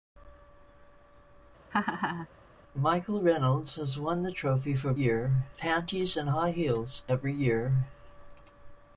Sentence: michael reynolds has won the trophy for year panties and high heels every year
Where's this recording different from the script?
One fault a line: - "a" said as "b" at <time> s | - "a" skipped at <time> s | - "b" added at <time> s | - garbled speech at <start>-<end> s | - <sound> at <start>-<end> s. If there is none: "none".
- laugh at 1.7-2.3 s